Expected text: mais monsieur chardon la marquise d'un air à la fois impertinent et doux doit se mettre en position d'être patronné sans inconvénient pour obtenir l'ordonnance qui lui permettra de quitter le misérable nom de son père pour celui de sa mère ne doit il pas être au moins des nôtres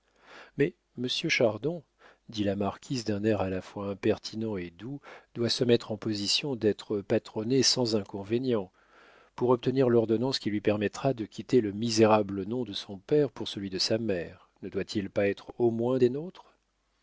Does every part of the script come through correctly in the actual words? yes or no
no